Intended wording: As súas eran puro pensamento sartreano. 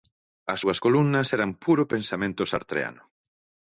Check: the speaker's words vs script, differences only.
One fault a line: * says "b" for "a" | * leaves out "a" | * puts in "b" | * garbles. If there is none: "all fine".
* puts in "columnas"